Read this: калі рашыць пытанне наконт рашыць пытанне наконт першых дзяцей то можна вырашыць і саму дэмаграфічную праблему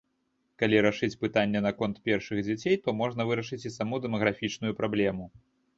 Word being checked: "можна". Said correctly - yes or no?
yes